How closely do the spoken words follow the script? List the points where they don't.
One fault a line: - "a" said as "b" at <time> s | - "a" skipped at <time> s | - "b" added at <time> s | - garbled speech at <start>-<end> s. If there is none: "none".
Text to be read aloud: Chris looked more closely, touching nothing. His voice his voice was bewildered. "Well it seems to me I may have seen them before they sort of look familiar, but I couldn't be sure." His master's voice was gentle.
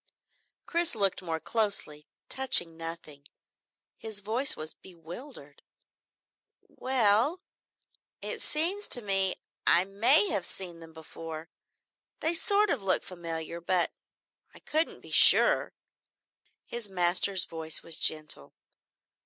- "his voice" skipped at 4.6 s